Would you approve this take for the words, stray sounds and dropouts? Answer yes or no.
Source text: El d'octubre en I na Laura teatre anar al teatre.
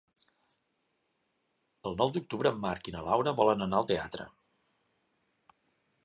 no